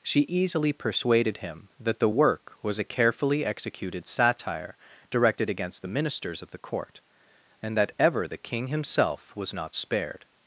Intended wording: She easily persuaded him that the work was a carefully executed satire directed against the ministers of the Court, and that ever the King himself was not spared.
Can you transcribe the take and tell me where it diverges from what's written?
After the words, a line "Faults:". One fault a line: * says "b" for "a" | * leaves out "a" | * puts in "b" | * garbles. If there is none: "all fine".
She easily persuaded him that the work was a carefully executed satire directed against the ministers of the Court, and that ever the King himself was not spared.
Faults:
all fine